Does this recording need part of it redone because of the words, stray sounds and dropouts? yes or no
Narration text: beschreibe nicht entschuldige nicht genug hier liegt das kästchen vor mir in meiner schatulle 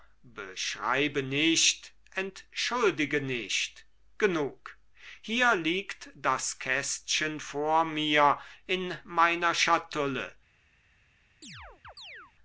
yes